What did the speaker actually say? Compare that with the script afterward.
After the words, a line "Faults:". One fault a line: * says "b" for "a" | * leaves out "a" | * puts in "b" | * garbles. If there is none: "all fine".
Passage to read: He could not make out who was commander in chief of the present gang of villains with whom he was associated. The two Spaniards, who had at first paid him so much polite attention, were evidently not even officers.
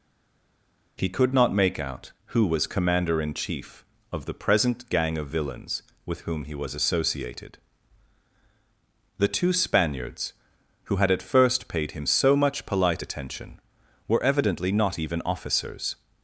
He could not make out who was commander in chief of the present gang of villains with whom he was associated. The two Spaniards, who had at first paid him so much polite attention, were evidently not even officers.
Faults:
all fine